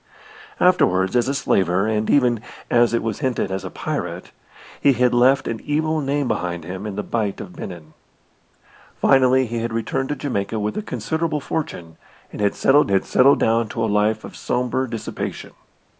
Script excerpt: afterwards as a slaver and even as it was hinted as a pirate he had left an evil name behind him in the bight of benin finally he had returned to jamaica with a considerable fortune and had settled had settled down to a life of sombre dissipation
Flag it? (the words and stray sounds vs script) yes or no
no